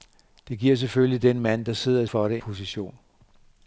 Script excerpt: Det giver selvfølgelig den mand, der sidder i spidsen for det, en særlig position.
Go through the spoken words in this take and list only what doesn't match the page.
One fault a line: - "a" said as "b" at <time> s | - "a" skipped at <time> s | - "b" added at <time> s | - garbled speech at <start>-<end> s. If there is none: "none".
- "spidsen" skipped at 2.1 s
- "en særlig" skipped at 2.4 s